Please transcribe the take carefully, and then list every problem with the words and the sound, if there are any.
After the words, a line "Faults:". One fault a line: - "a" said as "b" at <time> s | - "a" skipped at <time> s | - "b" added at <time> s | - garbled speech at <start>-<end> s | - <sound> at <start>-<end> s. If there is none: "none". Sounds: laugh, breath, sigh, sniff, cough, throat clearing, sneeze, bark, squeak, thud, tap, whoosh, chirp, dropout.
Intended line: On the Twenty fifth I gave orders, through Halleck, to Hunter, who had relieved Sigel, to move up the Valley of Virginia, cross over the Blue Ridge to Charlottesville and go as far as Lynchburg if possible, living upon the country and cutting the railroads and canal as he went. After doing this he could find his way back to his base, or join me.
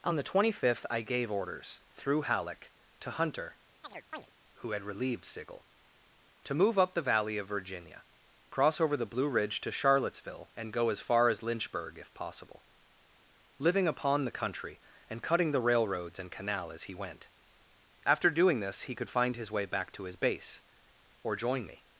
On the Twenty fifth I gave orders, through Halleck, to Hunter, who had relieved Sigel, to move up the Valley of Virginia, cross over the Blue Ridge to Charlottesville and go as far as Lynchburg if possible, living upon the country and cutting the railroads and canal as he went. After doing this he could find his way back to his base, or join me.
Faults:
- chirp at 3.8-4.3 s